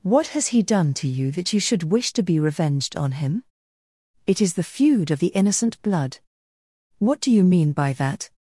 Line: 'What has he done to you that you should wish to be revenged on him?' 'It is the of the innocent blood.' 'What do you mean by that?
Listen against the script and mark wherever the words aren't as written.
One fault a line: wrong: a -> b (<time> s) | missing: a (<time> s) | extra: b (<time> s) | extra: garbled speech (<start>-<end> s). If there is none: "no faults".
extra: feud (4.6 s)